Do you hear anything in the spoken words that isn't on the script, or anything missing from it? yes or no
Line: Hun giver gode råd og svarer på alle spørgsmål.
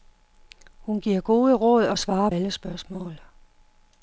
yes